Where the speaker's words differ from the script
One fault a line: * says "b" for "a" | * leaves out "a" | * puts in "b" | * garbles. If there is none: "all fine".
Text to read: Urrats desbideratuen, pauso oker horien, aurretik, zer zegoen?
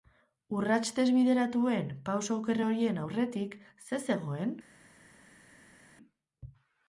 all fine